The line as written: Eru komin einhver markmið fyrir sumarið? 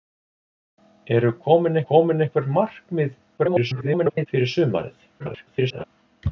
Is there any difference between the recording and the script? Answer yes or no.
yes